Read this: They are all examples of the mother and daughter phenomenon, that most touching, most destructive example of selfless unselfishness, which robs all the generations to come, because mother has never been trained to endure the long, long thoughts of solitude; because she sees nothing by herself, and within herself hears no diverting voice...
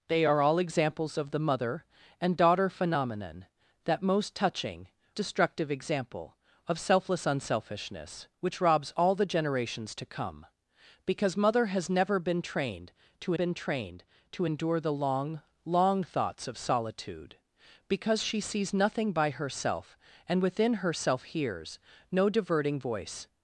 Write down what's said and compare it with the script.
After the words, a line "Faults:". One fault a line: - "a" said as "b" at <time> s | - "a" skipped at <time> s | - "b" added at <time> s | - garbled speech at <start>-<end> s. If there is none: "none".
They are all examples of the mother and daughter phenomenon, that most touching, destructive example of selfless unselfishness, which robs all the generations to come, because mother has never been trained to been trained to endure the long, long thoughts of solitude; because she sees nothing by herself, and within herself hears no diverting voice...
Faults:
- "most" skipped at 4.9 s
- "been trained to" added at 13.3 s